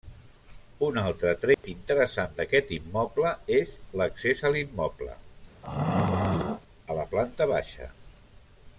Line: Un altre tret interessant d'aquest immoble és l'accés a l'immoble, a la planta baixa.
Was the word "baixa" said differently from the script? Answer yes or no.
no